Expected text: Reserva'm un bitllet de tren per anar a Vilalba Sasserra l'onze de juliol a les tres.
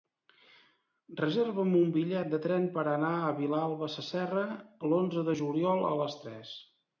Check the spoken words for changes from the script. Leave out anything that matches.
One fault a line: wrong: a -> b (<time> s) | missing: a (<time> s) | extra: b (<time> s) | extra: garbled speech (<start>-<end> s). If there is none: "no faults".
no faults